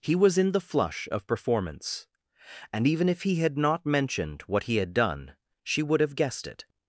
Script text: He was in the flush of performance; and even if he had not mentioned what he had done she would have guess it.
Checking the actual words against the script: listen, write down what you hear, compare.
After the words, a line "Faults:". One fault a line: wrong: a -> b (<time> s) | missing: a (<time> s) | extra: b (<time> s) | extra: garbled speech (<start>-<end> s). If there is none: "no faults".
He was in the flush of performance; and even if he had not mentioned what he had done she would have guessed it.
Faults:
wrong: guess -> guessed (6.2 s)